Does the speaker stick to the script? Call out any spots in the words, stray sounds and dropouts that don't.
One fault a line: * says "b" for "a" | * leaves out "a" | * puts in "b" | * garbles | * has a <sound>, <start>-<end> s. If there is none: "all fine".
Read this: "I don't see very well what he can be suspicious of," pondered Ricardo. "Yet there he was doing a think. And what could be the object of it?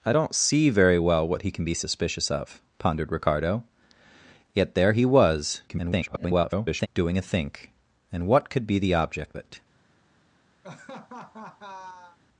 * garbles
* leaves out "of"
* has a laugh, 10.6-12.2 s